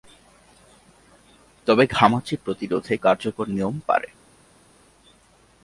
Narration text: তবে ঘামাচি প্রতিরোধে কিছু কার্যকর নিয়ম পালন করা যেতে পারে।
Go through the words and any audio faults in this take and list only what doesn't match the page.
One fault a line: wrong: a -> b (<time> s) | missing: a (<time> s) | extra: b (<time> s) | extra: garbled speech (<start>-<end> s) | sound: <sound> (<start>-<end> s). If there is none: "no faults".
missing: কিছু (2.9 s)
missing: পালন করা যেতে (3.7 s)